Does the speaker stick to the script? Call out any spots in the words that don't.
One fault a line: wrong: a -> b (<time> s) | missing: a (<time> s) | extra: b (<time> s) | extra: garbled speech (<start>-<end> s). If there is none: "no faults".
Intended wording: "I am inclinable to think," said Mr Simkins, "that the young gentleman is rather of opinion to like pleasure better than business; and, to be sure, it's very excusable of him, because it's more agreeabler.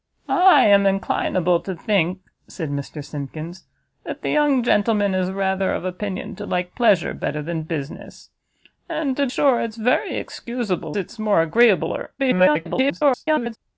missing: be (9.3 s)
missing: of him because (11.0 s)
extra: garbled speech (12.2-13.6 s)